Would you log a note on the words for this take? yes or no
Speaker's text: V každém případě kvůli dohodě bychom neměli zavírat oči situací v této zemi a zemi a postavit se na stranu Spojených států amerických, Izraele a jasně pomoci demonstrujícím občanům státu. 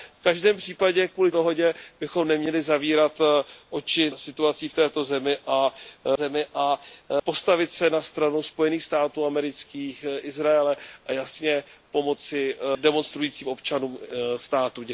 no